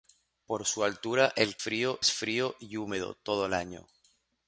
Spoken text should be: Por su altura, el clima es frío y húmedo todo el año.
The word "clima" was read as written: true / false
false